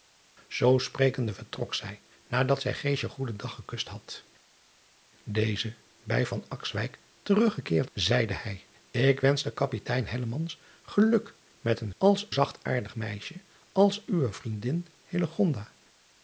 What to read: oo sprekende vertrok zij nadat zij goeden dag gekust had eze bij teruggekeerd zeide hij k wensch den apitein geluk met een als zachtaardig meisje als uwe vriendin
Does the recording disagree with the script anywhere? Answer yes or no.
no